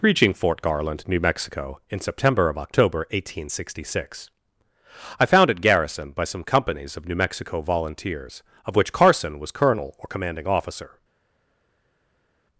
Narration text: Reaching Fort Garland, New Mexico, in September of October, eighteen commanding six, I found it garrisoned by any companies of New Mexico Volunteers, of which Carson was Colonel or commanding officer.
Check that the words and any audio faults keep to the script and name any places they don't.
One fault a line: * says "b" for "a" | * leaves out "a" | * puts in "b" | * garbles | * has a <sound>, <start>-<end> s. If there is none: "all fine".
* says "sixty" for "commanding"
* says "some" for "any"